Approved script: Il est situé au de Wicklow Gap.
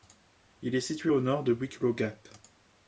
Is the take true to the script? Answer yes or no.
no